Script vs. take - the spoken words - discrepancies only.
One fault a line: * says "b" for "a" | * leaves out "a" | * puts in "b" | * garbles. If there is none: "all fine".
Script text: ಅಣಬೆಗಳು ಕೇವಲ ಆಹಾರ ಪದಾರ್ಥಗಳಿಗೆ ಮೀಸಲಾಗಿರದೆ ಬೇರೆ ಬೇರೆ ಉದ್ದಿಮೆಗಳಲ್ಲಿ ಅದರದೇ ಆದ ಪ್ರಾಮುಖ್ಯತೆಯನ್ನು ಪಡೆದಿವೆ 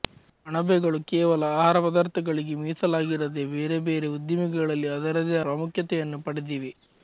* leaves out "ಆದ"